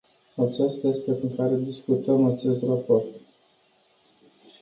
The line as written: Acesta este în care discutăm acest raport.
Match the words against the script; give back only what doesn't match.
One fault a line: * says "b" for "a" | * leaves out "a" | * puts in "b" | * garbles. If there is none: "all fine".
all fine